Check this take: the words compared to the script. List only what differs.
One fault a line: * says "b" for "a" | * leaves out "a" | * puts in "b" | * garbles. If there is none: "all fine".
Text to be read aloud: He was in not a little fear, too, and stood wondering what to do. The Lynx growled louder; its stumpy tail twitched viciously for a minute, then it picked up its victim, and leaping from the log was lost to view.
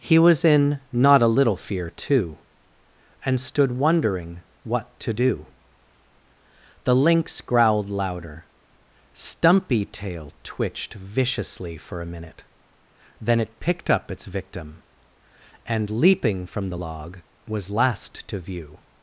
* leaves out "its"
* says "last" for "lost"